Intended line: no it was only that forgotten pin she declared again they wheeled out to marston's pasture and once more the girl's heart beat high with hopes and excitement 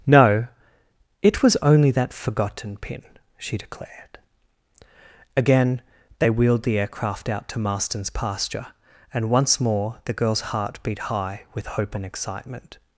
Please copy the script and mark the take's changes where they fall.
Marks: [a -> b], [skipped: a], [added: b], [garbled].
no it was only that forgotten pin she declared again they wheeled [added: the aircraft] out to marston's pasture and once more the girl's heart beat high with [hopes -> hope] and excitement